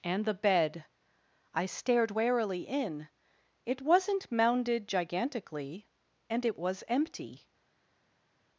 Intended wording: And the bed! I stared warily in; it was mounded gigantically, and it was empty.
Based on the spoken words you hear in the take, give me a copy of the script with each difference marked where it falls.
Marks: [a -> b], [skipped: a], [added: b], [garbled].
And the bed! I stared warily in; it [was -> wasn't] mounded gigantically, and it was empty.